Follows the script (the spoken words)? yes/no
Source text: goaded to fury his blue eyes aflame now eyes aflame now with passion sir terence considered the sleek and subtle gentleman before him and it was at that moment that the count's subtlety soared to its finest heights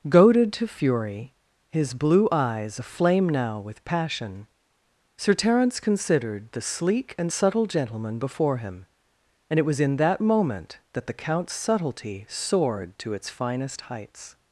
no